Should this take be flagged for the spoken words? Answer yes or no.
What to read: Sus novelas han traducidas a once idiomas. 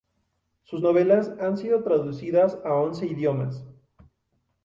yes